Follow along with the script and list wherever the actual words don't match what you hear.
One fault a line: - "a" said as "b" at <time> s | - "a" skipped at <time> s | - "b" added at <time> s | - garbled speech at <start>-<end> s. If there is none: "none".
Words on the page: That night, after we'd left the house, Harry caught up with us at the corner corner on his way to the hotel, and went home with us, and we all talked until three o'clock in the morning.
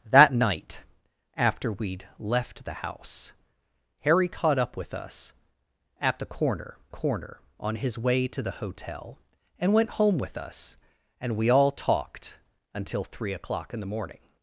none